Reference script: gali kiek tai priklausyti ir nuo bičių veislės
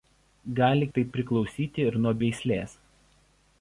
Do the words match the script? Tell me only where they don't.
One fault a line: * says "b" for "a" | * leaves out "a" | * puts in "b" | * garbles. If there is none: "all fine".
* leaves out "kiek"
* leaves out "bičių"